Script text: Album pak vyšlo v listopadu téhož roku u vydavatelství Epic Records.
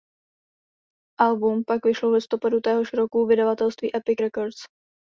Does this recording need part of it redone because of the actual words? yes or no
no